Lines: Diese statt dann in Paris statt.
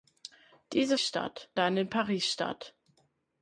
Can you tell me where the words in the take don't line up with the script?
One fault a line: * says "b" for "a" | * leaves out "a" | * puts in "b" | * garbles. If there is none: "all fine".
all fine